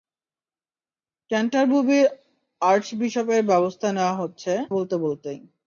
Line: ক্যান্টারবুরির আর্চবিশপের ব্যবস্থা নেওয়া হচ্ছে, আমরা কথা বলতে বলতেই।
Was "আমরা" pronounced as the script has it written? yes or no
no